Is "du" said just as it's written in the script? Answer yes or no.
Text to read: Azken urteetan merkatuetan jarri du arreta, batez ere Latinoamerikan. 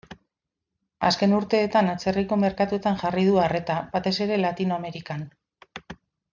yes